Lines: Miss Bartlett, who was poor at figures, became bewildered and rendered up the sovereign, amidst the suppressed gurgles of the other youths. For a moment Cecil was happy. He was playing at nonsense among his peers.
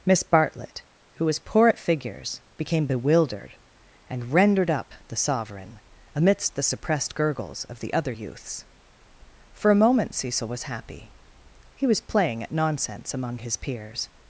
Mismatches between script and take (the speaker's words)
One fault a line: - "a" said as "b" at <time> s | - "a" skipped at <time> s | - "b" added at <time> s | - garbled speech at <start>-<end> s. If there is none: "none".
none